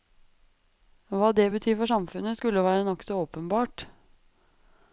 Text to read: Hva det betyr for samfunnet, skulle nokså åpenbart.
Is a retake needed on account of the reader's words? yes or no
yes